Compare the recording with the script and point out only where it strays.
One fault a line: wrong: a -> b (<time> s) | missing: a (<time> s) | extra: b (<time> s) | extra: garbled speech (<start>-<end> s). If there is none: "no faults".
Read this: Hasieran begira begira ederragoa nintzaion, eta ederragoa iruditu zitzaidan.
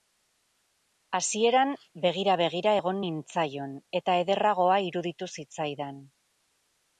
wrong: ederragoa -> egon (2.8 s)